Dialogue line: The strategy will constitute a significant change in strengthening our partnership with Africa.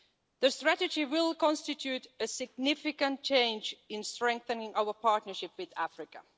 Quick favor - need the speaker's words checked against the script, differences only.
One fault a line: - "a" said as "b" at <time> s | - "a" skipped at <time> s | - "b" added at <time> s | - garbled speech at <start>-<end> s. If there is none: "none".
none